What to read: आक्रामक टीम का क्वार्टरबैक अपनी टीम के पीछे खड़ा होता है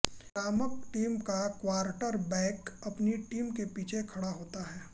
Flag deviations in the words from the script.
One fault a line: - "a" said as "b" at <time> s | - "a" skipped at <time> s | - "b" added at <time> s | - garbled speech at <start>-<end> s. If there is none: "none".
none